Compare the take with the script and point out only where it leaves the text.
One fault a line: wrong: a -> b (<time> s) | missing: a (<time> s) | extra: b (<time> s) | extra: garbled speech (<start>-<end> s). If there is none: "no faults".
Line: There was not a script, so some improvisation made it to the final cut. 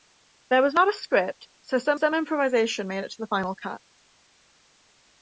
extra: some (1.9 s)